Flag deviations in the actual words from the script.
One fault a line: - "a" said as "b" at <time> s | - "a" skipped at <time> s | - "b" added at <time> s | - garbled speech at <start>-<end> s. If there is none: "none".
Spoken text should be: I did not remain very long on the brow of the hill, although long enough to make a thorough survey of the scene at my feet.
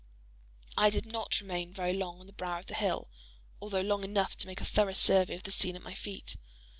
none